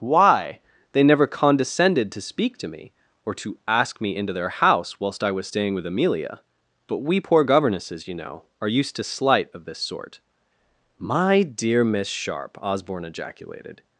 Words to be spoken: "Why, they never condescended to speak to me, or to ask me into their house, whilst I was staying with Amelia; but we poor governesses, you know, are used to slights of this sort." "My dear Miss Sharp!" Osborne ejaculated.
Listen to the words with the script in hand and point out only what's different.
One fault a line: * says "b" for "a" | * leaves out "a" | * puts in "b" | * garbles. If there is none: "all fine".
* says "slight" for "slights"